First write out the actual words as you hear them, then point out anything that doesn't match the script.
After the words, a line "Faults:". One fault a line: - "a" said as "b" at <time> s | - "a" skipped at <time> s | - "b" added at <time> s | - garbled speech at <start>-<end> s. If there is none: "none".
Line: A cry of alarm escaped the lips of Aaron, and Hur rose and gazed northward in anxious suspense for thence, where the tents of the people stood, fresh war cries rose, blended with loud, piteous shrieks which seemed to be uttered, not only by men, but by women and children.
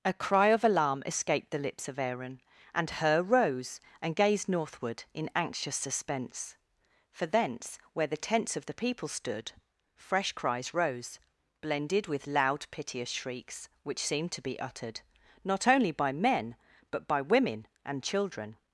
A cry of alarm escaped the lips of Aaron, and Hur rose and gazed northward in anxious suspense for thence, where the tents of the people stood, fresh cries rose, blended with loud, piteous shrieks which seemed to be uttered, not only by men, but by women and children.
Faults:
- "war" skipped at 10.3 s